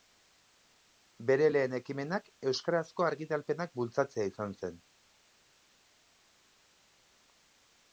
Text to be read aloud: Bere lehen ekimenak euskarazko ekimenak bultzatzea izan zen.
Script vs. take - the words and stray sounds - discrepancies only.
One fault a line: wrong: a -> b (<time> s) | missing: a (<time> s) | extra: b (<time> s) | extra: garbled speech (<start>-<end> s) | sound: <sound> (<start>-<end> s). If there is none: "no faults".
wrong: ekimenak -> argitalpenak (3.1 s)